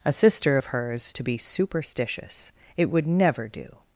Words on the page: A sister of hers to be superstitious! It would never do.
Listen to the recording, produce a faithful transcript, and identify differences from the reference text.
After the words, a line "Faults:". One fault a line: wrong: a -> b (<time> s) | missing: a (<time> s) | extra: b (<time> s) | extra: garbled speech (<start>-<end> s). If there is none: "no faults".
A sister of hers to be superstitious! It would never do.
Faults:
no faults